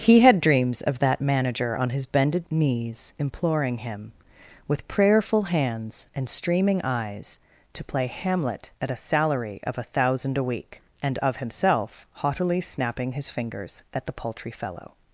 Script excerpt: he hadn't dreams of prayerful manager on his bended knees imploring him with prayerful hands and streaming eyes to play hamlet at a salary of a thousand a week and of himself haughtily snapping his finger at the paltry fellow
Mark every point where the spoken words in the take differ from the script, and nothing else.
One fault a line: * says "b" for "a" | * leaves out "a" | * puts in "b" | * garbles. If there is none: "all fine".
* says "had" for "hadn't"
* says "that" for "prayerful"
* says "fingers" for "finger"